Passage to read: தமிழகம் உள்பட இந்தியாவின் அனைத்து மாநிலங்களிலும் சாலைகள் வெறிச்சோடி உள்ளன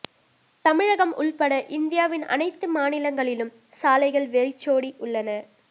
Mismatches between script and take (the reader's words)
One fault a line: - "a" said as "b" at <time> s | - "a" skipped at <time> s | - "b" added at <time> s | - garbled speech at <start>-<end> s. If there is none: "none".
none